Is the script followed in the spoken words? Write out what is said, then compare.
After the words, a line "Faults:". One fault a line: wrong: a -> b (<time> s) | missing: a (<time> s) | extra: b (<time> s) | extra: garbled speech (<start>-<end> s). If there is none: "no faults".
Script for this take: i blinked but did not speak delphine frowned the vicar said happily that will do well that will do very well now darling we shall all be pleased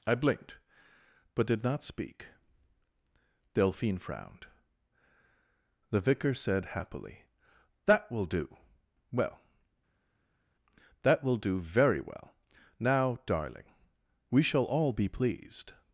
i blinked but did not speak delphine frowned the vicar said happily that will do well that will do very well now darling we shall all be pleased
Faults:
no faults